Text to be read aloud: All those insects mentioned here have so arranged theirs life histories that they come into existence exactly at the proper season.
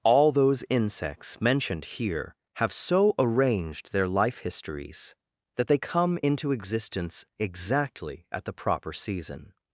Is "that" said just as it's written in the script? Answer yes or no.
yes